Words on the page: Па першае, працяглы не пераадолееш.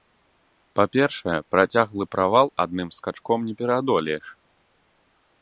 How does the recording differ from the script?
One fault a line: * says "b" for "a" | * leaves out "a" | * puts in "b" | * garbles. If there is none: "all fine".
* puts in "правал адным скачком"